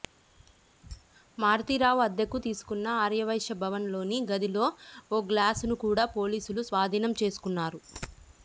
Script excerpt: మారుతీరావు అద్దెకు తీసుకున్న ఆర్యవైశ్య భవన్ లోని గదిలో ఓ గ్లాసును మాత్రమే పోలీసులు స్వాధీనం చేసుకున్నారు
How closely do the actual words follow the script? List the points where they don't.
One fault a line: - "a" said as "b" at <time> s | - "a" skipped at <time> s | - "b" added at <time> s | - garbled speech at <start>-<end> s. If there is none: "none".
- "మాత్రమే" said as "కూడా" at 5.8 s